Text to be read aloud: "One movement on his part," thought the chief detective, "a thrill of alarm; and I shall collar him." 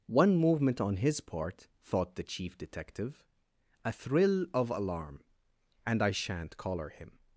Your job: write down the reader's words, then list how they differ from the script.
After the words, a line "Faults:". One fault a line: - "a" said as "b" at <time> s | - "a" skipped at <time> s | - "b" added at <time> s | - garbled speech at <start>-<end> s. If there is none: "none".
"One movement on his part," thought the chief detective, "a thrill of alarm; and I shan't collar him."
Faults:
- "shall" said as "shan't" at 6.1 s